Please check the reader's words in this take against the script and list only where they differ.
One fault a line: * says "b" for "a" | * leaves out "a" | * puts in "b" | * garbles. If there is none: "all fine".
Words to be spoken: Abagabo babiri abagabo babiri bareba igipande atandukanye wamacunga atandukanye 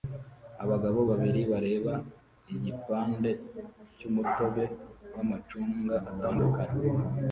* leaves out "abagabo babiri"
* says "cyumutobe" for "atandukanye"